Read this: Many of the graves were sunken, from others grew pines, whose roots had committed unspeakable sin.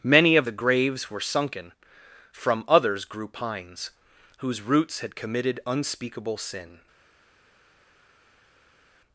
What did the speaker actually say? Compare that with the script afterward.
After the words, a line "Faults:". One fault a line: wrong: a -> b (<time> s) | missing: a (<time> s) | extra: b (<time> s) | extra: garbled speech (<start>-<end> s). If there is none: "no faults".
Many of the graves were sunken, from others grew pines, whose roots had committed unspeakable sin.
Faults:
no faults